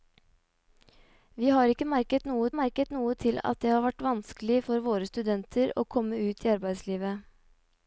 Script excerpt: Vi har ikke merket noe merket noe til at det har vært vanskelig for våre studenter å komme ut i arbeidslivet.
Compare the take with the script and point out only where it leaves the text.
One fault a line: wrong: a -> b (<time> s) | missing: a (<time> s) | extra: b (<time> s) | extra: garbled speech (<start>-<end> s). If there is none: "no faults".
no faults